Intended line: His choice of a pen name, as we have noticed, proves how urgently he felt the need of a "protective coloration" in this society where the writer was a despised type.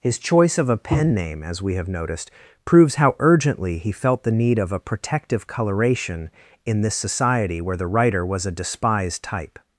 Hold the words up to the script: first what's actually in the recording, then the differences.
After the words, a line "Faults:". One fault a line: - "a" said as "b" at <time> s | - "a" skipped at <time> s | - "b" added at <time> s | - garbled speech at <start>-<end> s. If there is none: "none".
His choice of a pen name, as we have noticed, proves how urgently he felt the need of a "protective coloration" in this society where the writer was a despised type.
Faults:
none